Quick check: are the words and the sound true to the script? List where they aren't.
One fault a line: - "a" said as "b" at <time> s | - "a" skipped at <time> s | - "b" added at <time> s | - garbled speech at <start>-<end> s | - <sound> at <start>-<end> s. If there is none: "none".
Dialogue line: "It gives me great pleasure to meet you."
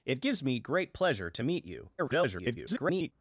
- garbled speech at 2.0-3.1 s